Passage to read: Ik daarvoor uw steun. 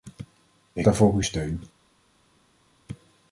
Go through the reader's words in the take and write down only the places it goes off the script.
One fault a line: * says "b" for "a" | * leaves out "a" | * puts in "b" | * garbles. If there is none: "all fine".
all fine